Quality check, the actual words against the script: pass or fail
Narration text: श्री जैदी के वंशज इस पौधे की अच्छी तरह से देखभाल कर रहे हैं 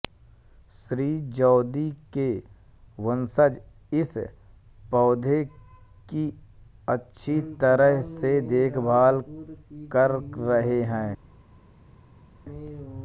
pass